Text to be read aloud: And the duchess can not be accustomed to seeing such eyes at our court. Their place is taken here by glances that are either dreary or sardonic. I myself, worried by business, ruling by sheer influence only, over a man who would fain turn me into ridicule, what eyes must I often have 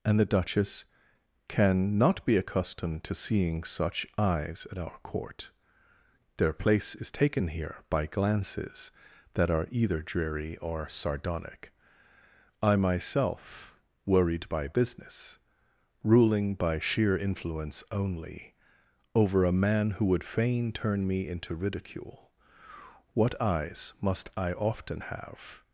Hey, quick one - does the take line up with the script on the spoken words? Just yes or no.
yes